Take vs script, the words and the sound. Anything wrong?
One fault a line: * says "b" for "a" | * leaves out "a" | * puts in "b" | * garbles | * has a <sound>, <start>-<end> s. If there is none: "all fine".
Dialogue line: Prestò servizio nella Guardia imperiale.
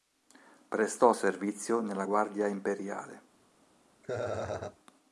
* has a laugh, 4.0-4.8 s